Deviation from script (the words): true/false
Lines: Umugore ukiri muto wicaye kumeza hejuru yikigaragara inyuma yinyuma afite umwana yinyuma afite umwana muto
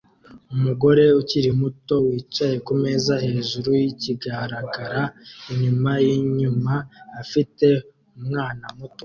true